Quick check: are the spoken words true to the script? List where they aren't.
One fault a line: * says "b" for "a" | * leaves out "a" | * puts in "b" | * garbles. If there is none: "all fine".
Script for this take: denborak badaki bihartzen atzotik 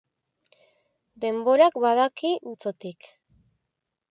* leaves out "bihartzen"